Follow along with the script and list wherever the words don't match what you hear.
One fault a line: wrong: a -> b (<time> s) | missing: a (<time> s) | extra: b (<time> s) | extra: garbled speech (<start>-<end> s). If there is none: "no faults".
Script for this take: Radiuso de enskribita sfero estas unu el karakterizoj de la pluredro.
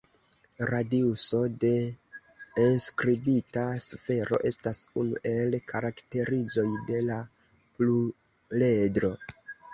no faults